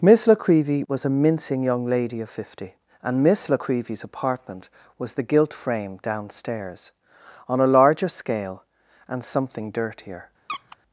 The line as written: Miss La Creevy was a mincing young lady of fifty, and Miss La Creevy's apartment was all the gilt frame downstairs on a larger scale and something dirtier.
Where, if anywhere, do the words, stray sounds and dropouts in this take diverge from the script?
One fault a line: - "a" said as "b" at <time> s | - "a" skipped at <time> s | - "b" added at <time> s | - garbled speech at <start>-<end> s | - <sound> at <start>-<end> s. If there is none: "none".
- "all" skipped at 5.1 s
- squeak at 10.5-10.8 s